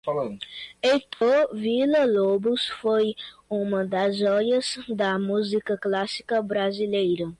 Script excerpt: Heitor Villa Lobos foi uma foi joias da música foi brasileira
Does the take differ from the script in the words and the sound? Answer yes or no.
yes